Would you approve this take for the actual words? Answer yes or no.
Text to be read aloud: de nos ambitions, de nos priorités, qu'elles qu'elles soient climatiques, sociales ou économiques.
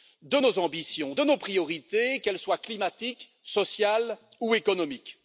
no